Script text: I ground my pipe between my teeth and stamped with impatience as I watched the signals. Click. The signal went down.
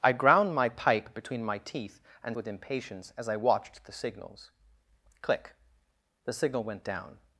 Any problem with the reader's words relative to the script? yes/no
yes